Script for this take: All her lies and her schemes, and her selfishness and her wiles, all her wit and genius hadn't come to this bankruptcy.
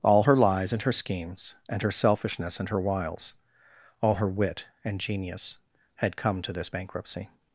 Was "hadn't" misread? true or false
true